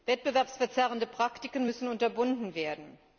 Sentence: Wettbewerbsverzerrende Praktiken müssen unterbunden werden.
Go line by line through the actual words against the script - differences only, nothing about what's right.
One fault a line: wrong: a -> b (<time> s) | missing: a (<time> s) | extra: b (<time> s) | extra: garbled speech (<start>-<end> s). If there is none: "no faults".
no faults